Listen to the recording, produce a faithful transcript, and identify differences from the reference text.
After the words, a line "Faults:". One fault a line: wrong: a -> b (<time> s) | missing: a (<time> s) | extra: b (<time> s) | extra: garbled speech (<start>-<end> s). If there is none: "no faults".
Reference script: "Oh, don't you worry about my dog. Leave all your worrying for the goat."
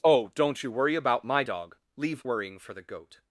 "Oh, don't you worry about my dog. Leave worrying for the goat."
Faults:
missing: all your (2.2 s)